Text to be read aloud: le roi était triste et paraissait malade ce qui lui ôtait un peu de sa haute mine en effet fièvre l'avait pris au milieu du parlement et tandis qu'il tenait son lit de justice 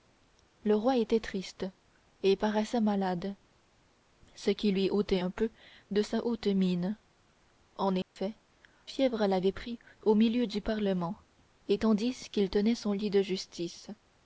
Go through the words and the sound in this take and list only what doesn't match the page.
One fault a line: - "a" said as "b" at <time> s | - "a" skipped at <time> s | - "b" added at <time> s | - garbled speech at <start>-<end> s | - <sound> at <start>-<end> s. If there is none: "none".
- dropout at 8.0-8.2 s